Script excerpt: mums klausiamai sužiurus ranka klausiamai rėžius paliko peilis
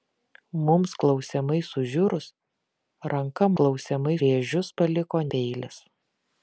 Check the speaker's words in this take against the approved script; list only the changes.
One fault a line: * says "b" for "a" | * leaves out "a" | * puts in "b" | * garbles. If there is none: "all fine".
all fine